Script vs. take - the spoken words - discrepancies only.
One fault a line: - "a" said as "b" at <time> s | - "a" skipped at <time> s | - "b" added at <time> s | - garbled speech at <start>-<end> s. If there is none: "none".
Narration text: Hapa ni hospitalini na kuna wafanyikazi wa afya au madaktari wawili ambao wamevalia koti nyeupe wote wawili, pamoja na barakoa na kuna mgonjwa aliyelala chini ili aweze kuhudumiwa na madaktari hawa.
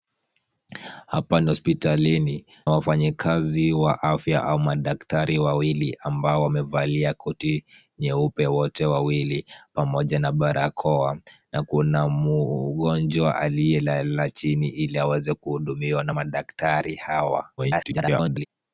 - "na kuna" skipped at 2.5 s
- garbled speech at 17.6-18.5 s